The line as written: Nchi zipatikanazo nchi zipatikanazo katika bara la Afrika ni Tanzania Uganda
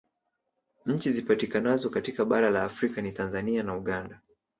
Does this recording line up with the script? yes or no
no